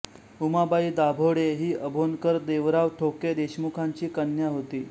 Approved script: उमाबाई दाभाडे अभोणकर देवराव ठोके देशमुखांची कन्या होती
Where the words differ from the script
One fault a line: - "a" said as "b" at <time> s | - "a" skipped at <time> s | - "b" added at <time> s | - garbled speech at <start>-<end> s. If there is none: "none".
- "ही" added at 1.6 s